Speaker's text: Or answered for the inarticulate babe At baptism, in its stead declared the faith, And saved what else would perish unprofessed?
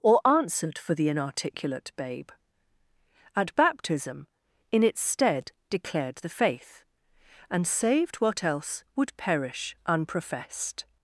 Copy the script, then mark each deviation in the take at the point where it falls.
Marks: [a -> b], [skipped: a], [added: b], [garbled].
Or answered for the inarticulate babe At baptism, in its stead declared the faith, And saved what else would perish unprofessed?